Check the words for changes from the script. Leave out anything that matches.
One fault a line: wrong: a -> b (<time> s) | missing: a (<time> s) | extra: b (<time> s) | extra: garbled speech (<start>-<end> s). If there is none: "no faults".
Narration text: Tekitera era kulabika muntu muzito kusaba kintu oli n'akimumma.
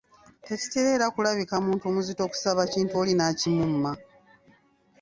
no faults